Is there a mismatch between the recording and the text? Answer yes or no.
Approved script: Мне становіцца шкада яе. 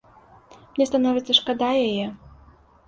no